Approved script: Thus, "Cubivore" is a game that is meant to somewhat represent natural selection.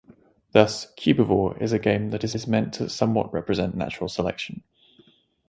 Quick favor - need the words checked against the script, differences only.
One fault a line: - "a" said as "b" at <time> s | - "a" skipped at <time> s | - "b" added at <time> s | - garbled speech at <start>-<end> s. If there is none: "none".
- "is" added at 2.3 s